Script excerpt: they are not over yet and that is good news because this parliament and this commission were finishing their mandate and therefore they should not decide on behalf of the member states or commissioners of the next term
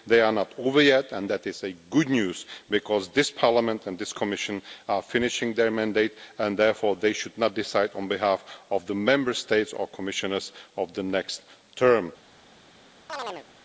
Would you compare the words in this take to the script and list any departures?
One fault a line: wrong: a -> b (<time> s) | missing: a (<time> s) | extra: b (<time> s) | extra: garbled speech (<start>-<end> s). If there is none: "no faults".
wrong: were -> are (4.9 s)